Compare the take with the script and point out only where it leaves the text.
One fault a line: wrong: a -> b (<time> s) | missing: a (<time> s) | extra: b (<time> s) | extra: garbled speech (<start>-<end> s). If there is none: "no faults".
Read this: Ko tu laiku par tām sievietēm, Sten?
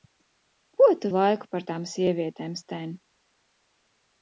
no faults